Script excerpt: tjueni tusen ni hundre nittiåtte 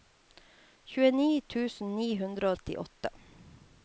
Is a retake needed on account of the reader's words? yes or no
no